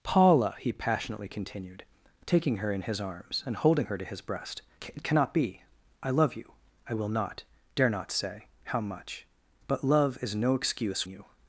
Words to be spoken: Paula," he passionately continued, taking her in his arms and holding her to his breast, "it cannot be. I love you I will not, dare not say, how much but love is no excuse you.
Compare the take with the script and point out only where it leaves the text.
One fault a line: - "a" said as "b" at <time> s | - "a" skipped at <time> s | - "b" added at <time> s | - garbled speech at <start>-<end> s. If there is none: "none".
none